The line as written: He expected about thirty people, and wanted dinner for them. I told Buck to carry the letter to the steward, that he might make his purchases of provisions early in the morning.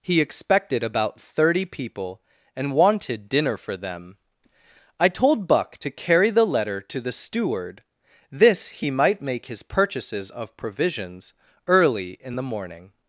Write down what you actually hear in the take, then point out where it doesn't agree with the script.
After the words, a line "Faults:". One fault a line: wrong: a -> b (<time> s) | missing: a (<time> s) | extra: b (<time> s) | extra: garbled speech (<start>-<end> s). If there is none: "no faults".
He expected about thirty people, and wanted dinner for them. I told Buck to carry the letter to the steward, this he might make his purchases of provisions early in the morning.
Faults:
wrong: that -> this (8.3 s)